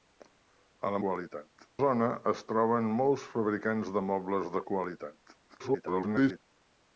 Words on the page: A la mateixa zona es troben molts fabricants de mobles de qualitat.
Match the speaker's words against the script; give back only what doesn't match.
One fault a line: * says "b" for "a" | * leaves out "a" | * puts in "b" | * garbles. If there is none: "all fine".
* says "qualitat" for "mateixa"
* garbles